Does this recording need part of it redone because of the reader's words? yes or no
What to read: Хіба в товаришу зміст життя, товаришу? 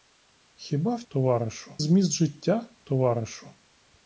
no